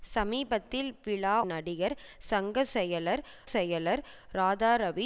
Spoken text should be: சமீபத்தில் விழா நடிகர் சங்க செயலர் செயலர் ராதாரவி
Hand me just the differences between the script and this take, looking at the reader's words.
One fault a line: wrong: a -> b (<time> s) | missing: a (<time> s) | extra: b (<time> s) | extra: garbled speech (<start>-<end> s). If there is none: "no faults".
no faults